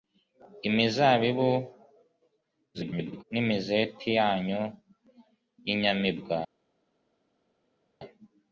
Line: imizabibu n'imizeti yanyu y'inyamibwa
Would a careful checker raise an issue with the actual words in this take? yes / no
yes